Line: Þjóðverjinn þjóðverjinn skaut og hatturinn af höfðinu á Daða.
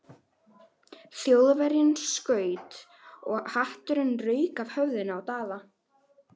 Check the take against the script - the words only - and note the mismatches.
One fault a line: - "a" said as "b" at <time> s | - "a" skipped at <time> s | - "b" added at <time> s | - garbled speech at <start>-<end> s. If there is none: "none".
- "þjóðverjinn" skipped at 1.9 s
- "rauk" added at 4.3 s